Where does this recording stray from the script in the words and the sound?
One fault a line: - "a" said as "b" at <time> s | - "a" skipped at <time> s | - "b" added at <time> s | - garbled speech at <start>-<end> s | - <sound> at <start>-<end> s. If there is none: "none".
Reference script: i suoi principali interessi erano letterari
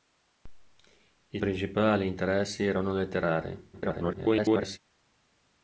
- "suoi" skipped at 1.4 s
- garbled speech at 3.7-4.8 s